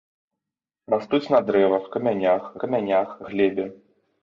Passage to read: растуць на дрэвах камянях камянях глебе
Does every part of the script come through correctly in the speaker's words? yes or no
yes